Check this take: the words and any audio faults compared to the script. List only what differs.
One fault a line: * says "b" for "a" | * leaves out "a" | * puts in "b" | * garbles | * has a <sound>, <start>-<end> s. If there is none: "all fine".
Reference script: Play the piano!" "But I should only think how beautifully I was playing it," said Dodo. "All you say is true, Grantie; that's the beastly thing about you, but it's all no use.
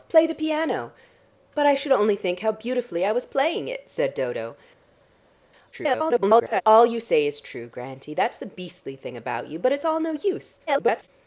* garbles
* garbles